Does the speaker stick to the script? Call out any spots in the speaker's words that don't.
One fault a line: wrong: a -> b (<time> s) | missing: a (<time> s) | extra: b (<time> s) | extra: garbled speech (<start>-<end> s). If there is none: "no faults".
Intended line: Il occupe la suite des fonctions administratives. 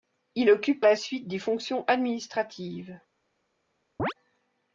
no faults